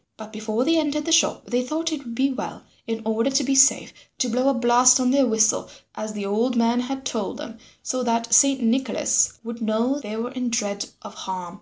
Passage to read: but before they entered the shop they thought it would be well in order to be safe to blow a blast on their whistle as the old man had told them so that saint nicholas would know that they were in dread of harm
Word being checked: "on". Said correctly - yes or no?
yes